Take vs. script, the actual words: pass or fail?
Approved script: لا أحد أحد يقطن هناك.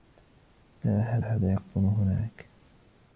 pass